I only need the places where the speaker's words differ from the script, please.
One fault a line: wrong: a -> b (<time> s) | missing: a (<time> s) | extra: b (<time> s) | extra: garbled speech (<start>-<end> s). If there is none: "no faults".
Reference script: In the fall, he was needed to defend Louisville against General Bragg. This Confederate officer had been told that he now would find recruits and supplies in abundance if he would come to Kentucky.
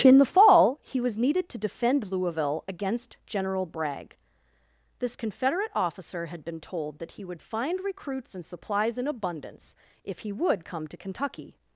missing: now (7.2 s)